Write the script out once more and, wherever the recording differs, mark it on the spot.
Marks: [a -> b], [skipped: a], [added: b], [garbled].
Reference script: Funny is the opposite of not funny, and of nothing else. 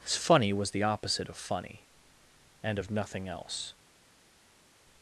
Funny [is -> was] the opposite of [skipped: not] funny, and of nothing else.